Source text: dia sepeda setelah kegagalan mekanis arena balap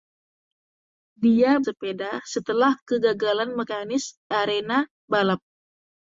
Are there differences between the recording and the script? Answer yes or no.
no